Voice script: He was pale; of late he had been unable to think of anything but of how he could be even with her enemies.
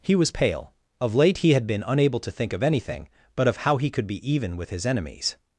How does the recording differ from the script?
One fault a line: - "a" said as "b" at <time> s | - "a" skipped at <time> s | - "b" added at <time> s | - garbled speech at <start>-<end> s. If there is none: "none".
- "her" said as "his" at 4.7 s